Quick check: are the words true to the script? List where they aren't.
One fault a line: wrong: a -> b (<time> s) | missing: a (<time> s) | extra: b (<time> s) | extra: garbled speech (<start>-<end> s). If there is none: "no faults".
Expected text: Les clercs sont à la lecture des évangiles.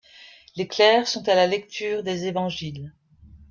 no faults